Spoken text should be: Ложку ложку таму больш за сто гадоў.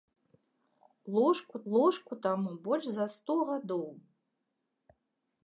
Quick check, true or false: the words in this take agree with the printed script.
true